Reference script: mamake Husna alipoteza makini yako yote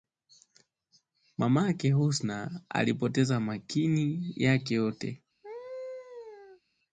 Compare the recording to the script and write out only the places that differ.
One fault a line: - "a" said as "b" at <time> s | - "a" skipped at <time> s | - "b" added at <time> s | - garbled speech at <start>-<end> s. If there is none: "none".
- "yako" said as "yake" at 4.3 s